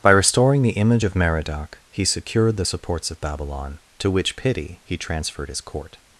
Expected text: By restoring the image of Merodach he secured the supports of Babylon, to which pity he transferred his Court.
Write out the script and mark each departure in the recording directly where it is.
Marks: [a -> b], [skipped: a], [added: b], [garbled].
By restoring the image of Merodach he secured the supports of Babylon, to which pity he transferred his Court.